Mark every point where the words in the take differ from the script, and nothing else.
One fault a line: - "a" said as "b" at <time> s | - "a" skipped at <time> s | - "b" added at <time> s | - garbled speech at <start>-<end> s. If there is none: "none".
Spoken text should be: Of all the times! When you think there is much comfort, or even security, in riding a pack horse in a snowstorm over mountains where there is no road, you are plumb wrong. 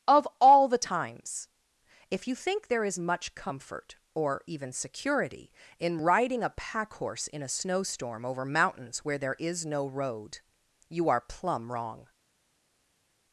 - "When" said as "If" at 2.1 s